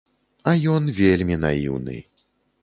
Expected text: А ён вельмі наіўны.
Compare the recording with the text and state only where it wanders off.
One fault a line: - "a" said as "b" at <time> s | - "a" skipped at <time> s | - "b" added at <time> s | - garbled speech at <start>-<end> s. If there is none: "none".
none